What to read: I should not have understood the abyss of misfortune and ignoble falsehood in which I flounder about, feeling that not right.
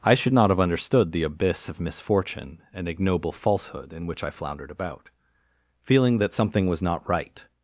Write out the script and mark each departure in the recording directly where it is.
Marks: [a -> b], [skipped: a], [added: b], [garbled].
I should not have understood the abyss of misfortune and ignoble falsehood in which I [flounder -> floundered] about, feeling that [added: something was] not right.